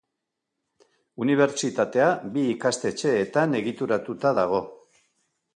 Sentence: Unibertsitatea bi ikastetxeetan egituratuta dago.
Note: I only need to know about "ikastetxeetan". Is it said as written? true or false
true